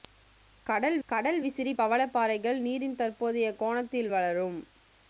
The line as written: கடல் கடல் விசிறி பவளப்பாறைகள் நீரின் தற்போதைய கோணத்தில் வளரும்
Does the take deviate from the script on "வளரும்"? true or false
false